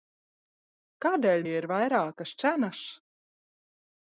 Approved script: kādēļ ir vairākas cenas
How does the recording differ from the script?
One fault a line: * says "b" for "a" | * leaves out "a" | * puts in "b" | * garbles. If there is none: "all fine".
all fine